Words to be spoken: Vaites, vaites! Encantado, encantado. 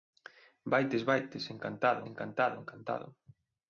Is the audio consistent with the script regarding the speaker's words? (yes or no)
no